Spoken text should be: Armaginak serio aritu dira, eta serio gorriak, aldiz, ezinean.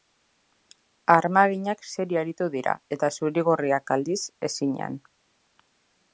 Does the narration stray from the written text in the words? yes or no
yes